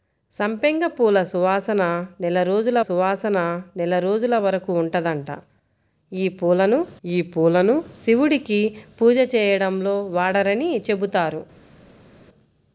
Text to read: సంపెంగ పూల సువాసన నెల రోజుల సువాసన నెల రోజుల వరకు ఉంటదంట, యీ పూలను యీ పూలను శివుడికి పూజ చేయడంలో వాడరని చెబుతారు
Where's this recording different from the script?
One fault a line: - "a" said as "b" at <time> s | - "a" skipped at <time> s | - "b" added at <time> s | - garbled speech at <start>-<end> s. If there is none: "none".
none